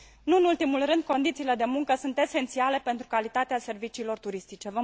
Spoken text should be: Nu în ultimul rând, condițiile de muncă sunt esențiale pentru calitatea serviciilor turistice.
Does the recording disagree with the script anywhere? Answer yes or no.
no